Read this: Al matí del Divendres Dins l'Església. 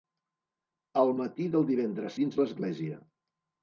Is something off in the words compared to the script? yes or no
no